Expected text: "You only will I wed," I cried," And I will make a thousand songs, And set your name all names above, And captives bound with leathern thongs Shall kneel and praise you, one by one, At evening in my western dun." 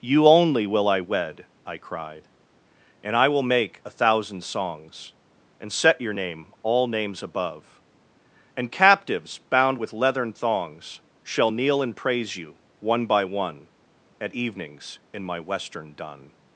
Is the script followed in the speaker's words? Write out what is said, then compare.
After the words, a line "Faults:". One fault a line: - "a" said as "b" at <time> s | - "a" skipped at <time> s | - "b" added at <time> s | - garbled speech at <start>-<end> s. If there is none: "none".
"You only will I wed," I cried," And I will make a thousand songs, And set your name all names above, And captives bound with leathern thongs Shall kneel and praise you, one by one, At evenings in my western dun."
Faults:
- "evening" said as "evenings" at 14.3 s